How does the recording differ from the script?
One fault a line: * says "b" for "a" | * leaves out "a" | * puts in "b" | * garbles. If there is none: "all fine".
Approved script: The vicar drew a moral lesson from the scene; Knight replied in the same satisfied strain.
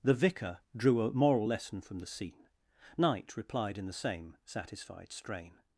all fine